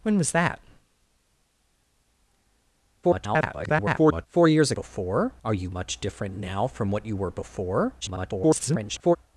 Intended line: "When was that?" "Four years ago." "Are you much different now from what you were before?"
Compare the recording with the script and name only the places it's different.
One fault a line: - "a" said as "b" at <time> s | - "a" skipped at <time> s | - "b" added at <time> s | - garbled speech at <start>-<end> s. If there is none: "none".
- garbled speech at 3.0-4.3 s
- "ago" said as "before" at 4.7 s
- garbled speech at 8.0-9.2 s